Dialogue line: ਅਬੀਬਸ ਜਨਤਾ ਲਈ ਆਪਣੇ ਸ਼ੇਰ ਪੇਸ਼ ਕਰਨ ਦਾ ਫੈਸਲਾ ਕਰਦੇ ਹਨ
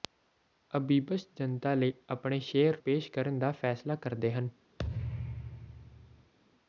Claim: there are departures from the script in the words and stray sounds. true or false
true